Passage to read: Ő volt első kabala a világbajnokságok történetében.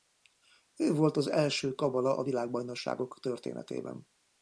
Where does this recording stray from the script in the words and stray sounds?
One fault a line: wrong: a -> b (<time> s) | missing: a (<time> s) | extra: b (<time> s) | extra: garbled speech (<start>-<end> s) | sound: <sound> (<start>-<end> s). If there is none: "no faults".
extra: az (1.2 s)